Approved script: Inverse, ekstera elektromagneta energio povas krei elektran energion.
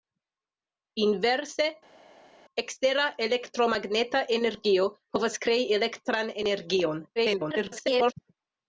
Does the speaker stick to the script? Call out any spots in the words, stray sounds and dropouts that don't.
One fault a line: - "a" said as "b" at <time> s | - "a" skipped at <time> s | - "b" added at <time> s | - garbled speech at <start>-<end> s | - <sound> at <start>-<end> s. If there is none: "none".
- garbled speech at 7.2-8.1 s